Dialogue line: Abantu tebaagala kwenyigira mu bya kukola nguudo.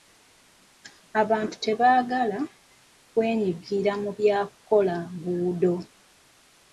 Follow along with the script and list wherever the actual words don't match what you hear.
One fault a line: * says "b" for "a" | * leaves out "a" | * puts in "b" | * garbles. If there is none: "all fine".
all fine